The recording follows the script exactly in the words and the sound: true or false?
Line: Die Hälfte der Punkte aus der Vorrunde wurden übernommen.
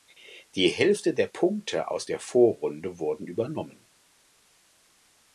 true